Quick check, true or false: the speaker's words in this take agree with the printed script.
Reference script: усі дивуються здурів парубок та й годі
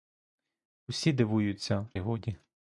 false